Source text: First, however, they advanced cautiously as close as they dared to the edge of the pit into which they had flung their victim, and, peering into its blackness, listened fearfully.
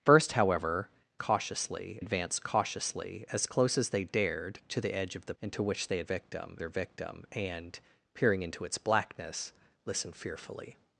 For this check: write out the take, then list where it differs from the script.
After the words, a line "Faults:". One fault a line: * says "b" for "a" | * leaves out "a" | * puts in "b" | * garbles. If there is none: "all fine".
First, however, cautiously advanced cautiously as close as they dared to the edge of the into which they had victim their victim, and, peering into its blackness, listened fearfully.
Faults:
* says "cautiously" for "they"
* leaves out "pit"
* says "victim" for "flung"